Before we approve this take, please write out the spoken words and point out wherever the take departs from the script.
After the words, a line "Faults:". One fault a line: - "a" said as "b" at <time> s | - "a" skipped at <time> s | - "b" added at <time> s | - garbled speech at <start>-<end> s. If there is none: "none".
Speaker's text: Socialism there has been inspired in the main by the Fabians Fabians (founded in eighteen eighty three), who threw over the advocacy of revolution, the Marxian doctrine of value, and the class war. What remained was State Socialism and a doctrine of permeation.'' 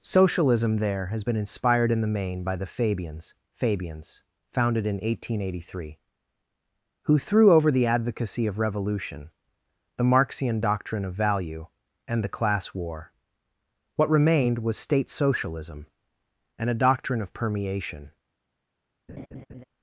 Socialism there has been inspired in the main by the Fabians Fabians (founded in eighteen eighty three), who threw over the advocacy of revolution, the Marxian doctrine of value, and the class war. What remained was State Socialism and a doctrine of permeation.''
Faults:
none